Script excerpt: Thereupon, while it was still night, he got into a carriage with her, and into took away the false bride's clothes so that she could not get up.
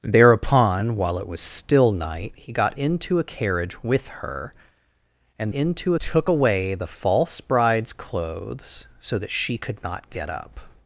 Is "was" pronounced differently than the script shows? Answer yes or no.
no